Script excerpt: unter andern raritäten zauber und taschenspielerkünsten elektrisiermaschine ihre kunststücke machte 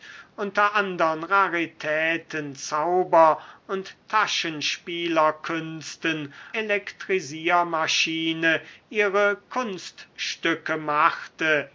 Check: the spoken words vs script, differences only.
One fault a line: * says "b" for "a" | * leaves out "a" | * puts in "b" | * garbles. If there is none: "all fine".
all fine